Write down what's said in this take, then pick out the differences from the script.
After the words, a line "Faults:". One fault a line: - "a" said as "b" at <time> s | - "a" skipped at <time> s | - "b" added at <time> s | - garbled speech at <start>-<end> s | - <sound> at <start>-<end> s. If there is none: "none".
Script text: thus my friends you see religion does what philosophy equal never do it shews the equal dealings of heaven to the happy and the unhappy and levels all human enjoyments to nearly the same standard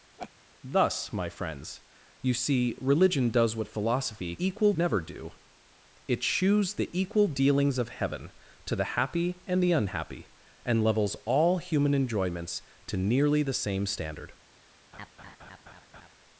thus my friends you see religion does what philosophy equal never do it shews the equal dealings of heaven to the happy and the unhappy and levels all human enjoyments to nearly the same standard
Faults:
- laugh at 0.2-0.3 s
- laugh at 14.9-16.2 s